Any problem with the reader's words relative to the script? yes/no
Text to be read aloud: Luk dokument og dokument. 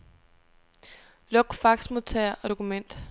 yes